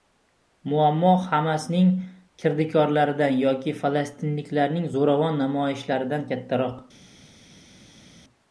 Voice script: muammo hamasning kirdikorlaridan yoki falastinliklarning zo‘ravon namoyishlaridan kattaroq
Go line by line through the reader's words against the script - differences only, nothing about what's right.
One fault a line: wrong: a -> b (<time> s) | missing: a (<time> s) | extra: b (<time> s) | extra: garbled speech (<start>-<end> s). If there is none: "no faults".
no faults